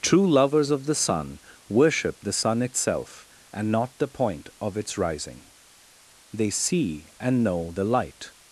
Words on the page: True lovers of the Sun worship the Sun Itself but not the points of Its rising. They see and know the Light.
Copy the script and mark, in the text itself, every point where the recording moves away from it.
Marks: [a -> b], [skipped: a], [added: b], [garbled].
True lovers of the Sun worship the Sun Itself [but -> and] not the [points -> point] of Its rising. They see and know the Light.